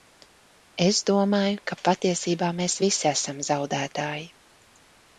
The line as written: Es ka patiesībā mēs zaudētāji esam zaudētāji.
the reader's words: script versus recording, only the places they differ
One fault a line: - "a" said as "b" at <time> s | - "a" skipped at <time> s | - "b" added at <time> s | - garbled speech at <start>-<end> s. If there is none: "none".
- "domāju" added at 1.1 s
- "zaudētāji" said as "visi" at 2.9 s